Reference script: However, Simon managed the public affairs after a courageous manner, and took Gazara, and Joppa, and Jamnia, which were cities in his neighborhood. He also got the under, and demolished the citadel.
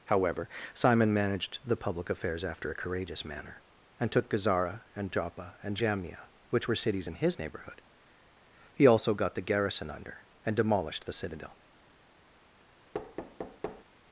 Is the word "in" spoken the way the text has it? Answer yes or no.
yes